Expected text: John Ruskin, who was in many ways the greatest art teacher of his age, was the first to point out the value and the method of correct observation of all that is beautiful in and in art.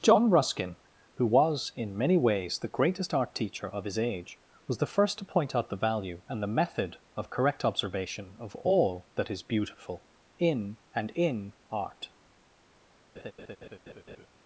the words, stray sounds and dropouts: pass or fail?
fail